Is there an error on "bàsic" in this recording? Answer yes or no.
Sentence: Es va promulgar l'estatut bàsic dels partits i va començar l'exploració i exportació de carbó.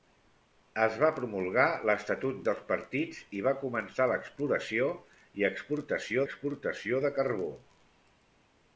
yes